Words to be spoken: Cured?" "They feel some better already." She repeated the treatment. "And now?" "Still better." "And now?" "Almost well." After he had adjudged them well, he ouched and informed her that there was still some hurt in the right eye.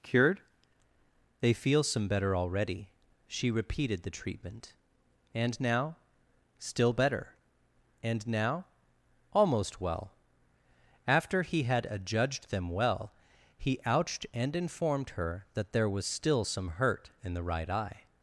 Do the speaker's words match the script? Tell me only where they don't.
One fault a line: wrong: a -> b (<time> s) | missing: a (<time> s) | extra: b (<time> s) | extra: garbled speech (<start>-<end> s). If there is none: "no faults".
no faults